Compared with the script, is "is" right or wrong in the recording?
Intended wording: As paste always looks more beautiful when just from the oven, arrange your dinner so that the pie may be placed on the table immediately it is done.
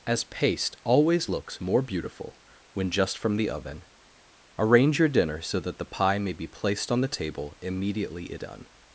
wrong